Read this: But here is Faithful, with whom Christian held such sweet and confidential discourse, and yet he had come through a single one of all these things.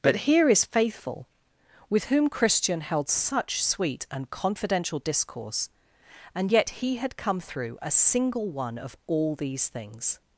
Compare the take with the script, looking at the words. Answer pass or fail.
pass